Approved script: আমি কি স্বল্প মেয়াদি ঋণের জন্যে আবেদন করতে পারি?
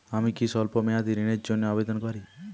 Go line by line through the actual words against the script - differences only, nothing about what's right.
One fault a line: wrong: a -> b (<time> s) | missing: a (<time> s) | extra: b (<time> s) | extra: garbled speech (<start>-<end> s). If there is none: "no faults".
missing: করতে (2.0 s)